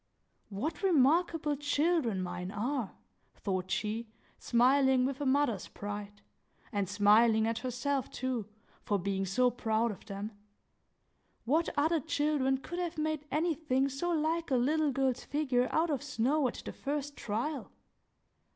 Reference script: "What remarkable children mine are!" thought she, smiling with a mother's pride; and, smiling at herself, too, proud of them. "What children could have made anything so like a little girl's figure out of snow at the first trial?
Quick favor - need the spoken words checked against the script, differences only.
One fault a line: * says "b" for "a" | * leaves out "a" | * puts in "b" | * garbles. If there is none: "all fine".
* puts in "for being so"
* puts in "other"